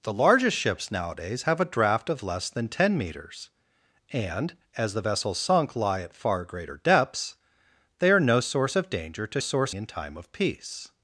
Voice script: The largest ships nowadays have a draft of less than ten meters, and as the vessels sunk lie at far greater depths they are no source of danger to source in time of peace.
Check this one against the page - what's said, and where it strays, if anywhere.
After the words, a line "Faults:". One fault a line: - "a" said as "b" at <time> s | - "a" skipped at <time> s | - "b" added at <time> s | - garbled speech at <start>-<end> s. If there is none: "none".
The largest ships nowadays have a draft of less than ten meters, and as the vessels sunk lie at far greater depths they are no source of danger to source in time of peace.
Faults:
none